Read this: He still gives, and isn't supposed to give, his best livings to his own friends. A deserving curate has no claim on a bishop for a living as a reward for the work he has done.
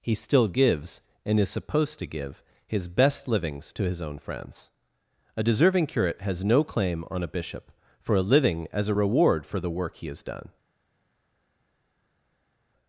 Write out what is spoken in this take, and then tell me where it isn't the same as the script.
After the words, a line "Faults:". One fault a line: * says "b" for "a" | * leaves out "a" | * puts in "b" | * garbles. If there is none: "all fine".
He still gives, and is supposed to give, his best livings to his own friends. A deserving curate has no claim on a bishop for a living as a reward for the work he has done.
Faults:
* says "is" for "isn't"